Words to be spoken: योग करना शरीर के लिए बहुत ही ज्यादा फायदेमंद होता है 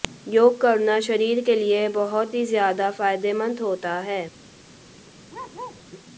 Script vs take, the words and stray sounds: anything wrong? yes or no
yes